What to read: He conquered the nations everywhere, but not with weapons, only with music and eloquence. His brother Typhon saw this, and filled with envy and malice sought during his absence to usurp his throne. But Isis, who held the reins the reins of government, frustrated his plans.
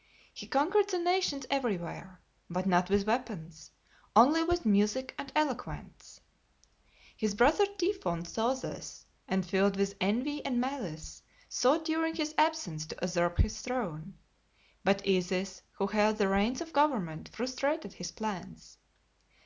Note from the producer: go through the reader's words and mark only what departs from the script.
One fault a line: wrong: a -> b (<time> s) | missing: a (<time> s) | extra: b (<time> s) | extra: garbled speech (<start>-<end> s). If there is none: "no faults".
missing: the reins (16.6 s)